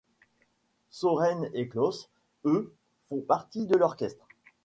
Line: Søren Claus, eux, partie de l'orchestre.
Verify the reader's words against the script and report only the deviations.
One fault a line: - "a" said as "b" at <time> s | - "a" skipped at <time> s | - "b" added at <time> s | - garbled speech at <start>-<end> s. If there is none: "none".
- "et" added at 1.5 s
- "font" added at 3.1 s